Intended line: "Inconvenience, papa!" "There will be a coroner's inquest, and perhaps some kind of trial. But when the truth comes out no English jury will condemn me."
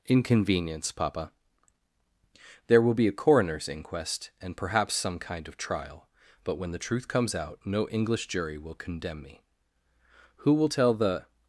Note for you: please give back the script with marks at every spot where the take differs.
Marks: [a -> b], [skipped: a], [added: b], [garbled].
"Inconvenience, papa!" "There will be a coroner's inquest, and perhaps some kind of trial. But when the truth comes out no English jury will condemn me." [added: Who will tell the]